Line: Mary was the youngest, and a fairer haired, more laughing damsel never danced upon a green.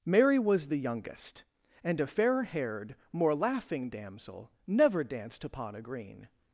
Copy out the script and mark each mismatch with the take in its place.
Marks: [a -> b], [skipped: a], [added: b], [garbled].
Mary was the youngest, and a [fairer -> fair] haired, more laughing damsel never danced upon a green.